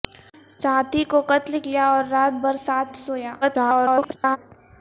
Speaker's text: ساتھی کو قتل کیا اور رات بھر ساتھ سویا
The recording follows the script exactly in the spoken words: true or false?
false